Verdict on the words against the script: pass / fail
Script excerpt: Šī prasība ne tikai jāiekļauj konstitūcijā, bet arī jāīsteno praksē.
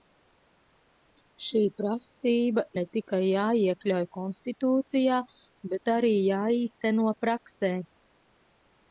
pass